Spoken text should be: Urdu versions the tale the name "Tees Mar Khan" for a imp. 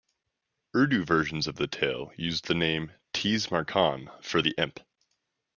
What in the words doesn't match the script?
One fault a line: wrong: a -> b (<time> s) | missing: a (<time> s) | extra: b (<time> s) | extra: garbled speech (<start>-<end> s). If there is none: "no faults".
extra: of (1.4 s)
extra: used (2.1 s)
wrong: a -> the (4.4 s)